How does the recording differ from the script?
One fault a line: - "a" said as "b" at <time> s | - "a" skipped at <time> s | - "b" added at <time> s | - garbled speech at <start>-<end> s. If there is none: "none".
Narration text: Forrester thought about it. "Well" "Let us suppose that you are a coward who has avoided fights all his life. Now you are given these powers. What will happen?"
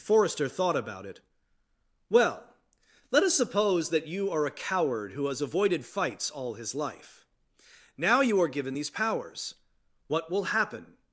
none